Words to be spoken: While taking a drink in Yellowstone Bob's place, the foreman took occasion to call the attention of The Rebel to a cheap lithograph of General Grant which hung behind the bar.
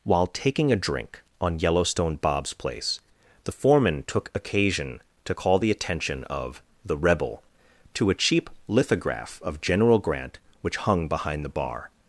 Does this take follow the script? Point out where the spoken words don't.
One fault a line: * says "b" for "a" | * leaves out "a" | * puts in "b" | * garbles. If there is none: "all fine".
* says "on" for "in"